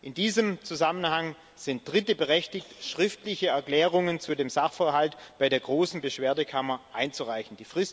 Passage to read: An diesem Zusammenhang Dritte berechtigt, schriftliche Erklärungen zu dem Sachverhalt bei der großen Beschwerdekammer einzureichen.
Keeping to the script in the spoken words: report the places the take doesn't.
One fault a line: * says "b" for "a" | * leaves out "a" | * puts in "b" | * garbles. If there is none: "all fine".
* says "In" for "An"
* puts in "sind"